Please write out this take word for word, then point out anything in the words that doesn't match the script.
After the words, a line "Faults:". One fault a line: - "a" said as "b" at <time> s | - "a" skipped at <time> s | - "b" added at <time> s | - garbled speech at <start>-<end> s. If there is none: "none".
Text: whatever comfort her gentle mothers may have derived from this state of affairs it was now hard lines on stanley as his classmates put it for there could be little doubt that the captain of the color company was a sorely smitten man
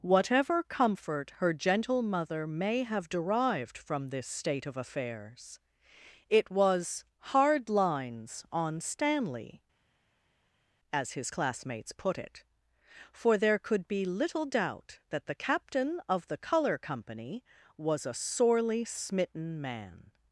whatever comfort her gentle mother may have derived from this state of affairs it was hard lines on stanley as his classmates put it for there could be little doubt that the captain of the color company was a sorely smitten man
Faults:
- "mothers" said as "mother" at 2.0 s
- "now" skipped at 7.0 s